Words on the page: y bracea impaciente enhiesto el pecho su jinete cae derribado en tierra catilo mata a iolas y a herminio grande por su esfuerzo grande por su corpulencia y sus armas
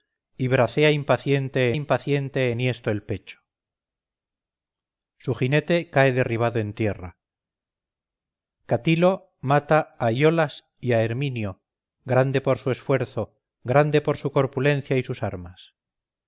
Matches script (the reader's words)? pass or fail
fail